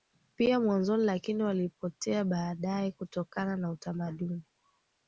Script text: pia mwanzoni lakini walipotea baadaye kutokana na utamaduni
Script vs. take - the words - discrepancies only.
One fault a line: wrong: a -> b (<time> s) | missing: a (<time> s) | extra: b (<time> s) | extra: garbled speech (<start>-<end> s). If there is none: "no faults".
no faults